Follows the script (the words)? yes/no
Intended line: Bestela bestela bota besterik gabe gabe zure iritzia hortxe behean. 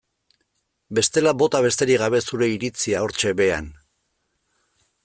no